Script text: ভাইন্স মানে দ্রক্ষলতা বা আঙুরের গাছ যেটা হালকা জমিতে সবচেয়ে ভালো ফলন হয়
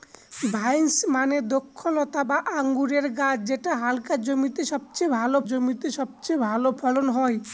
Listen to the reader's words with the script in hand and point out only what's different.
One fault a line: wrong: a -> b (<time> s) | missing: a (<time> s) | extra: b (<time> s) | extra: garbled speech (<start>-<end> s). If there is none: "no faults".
extra: জমিতে সবচেয়ে ভালো (5.5 s)